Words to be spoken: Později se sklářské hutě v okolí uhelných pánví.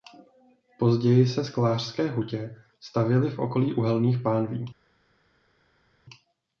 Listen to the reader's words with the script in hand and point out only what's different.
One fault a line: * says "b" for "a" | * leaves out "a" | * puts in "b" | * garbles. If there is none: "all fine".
* puts in "stavěly"